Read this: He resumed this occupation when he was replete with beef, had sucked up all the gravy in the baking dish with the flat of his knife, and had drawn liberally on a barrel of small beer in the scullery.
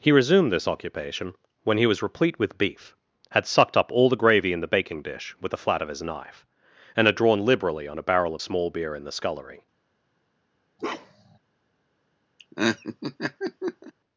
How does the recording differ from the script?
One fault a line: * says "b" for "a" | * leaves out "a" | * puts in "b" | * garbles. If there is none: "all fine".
all fine